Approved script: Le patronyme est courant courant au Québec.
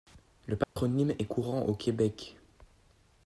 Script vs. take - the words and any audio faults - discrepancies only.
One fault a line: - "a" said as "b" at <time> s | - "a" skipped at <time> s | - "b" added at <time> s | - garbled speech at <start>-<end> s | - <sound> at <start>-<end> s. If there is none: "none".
- dropout at 0.6-0.8 s
- "courant" skipped at 1.6 s